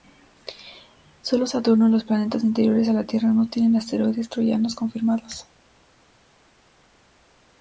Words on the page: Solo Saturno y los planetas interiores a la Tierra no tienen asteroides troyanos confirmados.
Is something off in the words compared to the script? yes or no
no